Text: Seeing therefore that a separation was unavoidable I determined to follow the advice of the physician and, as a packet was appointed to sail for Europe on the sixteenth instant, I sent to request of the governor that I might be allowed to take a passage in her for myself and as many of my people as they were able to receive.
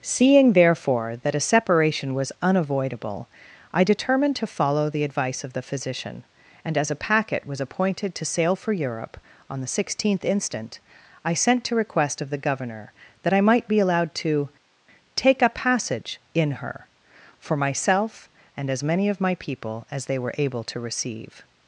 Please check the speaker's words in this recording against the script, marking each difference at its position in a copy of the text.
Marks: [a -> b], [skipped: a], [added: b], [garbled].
Seeing therefore that a separation was unavoidable I determined to follow the advice of the physician and, as a packet was appointed to sail for Europe on the sixteenth instant, I sent to request of the governor that I might be allowed to take a passage in her for myself and as many of my people as they were able to receive.